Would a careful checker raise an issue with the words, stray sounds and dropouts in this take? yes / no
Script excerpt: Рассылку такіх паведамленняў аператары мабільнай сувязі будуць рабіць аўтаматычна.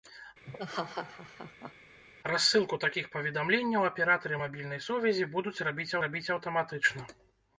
yes